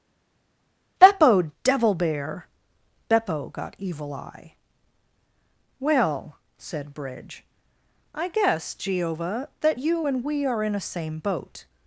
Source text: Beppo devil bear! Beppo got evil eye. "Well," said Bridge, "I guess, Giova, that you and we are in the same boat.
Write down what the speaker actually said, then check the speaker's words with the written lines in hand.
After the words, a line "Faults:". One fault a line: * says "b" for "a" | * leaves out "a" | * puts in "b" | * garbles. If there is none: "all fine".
Beppo devil bear! Beppo got evil eye. "Well," said Bridge, "I guess, Giova, that you and we are in a same boat.
Faults:
* says "a" for "the"